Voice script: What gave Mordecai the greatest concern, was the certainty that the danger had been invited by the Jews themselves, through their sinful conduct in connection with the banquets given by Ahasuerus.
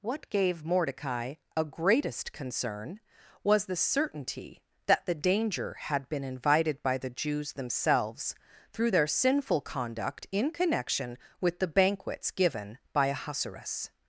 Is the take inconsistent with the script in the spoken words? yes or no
yes